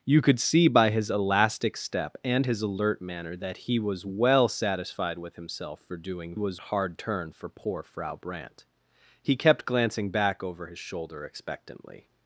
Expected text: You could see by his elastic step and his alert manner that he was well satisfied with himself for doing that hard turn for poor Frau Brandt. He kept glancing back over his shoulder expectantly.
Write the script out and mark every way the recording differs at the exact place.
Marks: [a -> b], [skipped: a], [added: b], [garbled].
You could see by his elastic step and his alert manner that he was well satisfied with himself for doing [that -> was] hard turn for poor Frau Brandt. He kept glancing back over his shoulder expectantly.